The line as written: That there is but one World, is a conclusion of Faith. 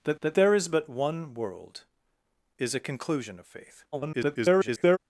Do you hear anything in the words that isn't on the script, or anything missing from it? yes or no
yes